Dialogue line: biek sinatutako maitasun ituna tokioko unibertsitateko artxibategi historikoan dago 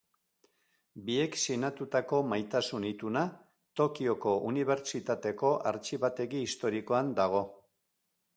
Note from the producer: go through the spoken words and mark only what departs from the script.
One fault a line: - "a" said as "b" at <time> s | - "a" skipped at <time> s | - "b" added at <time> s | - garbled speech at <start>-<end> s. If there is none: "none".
none